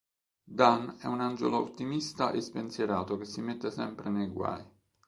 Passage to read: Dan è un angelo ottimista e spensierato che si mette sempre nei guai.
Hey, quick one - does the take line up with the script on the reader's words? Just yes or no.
yes